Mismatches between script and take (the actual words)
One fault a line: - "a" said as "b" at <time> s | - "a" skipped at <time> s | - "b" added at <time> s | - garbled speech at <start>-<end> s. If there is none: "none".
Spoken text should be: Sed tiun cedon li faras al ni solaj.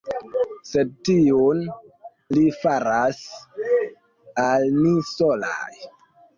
- "cedon" skipped at 1.6 s